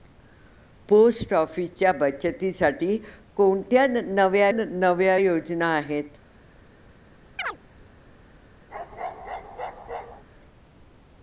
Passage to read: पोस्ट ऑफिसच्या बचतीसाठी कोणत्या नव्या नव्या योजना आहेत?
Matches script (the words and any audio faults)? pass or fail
fail